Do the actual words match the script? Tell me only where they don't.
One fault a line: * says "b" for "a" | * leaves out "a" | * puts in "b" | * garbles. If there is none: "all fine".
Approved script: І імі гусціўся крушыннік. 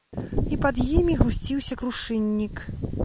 * puts in "пад"